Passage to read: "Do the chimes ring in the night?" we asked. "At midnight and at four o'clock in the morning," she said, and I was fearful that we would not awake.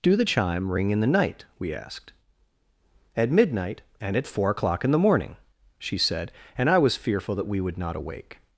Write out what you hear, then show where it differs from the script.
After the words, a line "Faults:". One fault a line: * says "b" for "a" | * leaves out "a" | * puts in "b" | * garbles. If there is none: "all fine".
"Do the chime ring in the night?" we asked. "At midnight and at four o'clock in the morning," she said, and I was fearful that we would not awake.
Faults:
* says "chime" for "chimes"